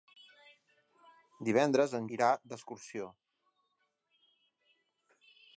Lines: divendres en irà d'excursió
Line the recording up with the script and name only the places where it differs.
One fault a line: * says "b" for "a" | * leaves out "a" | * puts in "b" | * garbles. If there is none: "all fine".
all fine